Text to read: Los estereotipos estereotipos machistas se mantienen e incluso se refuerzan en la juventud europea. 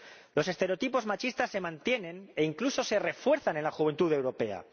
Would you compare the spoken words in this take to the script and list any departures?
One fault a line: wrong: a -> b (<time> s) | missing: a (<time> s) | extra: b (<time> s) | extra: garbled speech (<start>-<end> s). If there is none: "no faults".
missing: estereotipos (1.1 s)